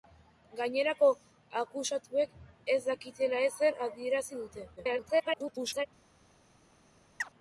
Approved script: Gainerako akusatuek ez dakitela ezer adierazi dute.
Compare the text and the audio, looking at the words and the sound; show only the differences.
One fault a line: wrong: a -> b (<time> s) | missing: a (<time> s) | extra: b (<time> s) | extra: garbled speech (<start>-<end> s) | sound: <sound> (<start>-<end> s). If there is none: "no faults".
extra: garbled speech (4.8-5.9 s)
sound: chirp (7.2-7.3 s)